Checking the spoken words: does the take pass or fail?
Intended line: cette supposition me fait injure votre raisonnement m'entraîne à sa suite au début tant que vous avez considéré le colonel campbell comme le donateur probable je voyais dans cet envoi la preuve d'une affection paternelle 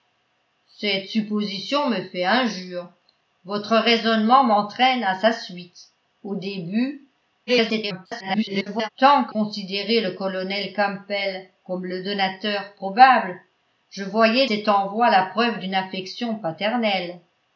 fail